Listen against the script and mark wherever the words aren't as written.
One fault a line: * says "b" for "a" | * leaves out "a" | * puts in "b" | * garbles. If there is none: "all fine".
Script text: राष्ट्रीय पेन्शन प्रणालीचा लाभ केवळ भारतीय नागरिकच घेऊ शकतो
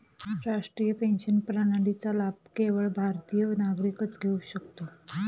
all fine